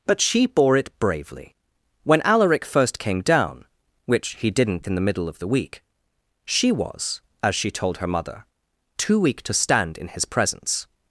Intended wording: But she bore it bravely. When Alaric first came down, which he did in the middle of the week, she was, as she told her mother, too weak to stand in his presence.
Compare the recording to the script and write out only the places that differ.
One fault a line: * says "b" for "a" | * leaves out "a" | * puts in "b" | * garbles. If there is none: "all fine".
* says "didn't" for "did"